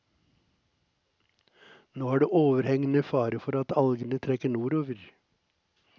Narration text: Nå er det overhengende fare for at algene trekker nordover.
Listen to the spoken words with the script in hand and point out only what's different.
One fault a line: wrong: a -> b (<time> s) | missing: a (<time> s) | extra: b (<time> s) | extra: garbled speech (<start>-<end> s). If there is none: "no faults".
no faults